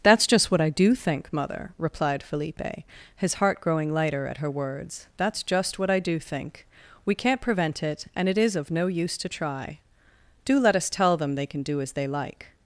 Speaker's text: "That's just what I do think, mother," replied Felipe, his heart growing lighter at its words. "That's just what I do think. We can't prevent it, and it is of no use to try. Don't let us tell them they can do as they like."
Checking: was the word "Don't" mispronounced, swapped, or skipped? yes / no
yes